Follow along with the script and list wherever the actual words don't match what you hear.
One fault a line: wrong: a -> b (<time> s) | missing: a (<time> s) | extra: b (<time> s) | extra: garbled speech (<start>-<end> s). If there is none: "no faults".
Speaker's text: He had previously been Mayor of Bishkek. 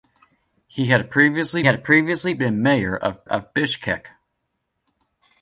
extra: had previously (1.6 s)
extra: of (3.2 s)